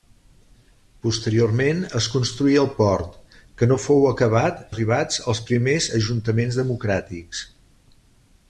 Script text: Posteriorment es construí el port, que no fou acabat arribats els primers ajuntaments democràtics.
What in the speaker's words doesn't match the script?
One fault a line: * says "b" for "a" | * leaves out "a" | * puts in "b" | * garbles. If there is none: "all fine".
all fine